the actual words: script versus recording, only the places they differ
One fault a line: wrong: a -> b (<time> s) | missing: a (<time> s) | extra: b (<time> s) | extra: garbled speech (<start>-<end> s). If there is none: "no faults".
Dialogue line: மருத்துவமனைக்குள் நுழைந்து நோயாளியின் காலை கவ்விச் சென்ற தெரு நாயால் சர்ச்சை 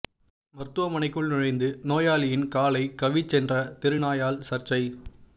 no faults